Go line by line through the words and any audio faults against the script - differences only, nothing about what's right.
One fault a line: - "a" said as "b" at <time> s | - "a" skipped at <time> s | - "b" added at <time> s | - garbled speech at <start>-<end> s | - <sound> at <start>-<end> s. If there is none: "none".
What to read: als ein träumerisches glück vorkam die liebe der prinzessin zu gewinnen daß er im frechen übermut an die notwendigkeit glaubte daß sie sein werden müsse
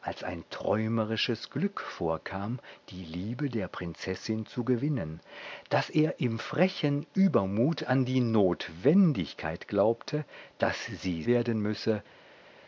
- "sein" skipped at 11.2 s